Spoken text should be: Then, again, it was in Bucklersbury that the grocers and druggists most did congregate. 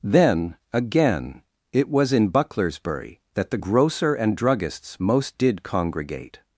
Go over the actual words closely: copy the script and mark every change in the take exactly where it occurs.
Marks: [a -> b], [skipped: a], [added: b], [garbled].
Then, again, it was in Bucklersbury that the [grocers -> grocer] and druggists most did congregate.